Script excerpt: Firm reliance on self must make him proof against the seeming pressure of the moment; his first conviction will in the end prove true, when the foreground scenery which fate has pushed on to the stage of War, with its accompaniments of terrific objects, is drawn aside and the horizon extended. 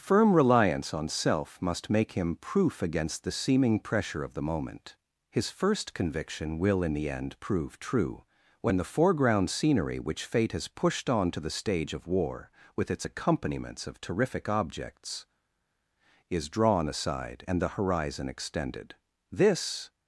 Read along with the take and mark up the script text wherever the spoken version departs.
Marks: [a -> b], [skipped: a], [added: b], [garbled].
Firm reliance on self must make him proof against the seeming pressure of the moment; his first conviction will in the end prove true, when the foreground scenery which fate has pushed on to the stage of War, with its accompaniments of terrific objects, is drawn aside and the horizon extended. [added: This]